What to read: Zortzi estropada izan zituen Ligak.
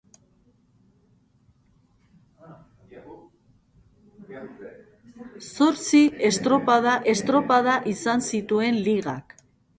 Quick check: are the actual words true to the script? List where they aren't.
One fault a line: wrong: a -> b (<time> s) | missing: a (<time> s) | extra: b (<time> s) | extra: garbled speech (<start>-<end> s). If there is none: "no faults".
extra: estropada (7.1 s)